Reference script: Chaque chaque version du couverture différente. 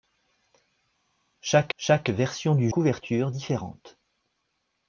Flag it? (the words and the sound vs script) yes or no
no